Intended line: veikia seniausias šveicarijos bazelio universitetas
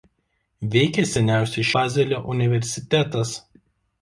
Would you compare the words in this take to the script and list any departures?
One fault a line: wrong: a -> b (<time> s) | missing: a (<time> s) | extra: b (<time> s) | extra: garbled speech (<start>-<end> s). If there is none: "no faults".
missing: šveicarijos (1.7 s)